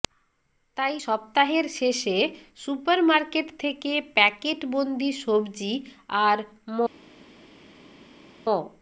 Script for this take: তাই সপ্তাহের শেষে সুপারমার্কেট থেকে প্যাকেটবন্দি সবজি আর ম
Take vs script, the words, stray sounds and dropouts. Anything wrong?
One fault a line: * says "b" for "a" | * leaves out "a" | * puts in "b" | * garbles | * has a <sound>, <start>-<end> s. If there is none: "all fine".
all fine